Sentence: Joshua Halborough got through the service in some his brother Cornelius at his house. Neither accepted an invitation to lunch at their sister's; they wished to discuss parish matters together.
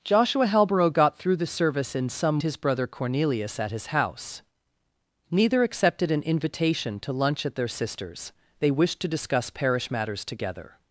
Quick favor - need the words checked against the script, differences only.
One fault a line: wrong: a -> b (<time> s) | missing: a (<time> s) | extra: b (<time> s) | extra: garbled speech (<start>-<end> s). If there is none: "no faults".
no faults